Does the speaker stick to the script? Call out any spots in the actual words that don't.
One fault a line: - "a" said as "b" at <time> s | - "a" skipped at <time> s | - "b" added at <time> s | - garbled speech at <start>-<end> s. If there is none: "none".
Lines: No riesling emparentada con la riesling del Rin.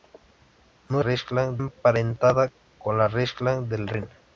none